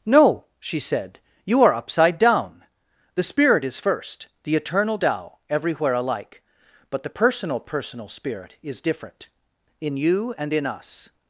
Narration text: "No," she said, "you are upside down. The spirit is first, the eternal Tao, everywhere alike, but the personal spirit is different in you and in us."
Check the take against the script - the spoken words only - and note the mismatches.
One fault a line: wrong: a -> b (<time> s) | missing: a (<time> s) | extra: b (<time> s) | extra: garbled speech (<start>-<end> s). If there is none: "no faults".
extra: personal (7.6 s)